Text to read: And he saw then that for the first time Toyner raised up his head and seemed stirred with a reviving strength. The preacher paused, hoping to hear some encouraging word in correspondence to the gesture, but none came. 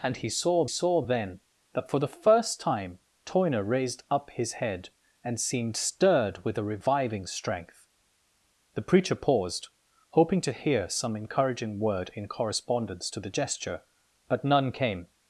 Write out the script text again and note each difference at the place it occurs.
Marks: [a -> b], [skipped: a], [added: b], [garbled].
And he saw [added: saw] then that for the first time Toyner raised up his head and seemed stirred with a reviving strength. The preacher paused, hoping to hear some encouraging word in correspondence to the gesture, but none came.